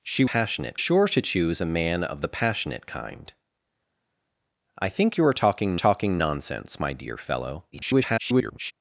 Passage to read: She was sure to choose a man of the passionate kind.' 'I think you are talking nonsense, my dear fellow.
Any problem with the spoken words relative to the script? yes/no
yes